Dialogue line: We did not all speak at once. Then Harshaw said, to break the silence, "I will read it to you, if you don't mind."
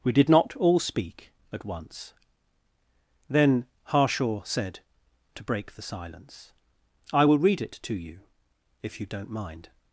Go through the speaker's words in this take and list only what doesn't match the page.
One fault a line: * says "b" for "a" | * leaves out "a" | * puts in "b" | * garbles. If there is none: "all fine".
all fine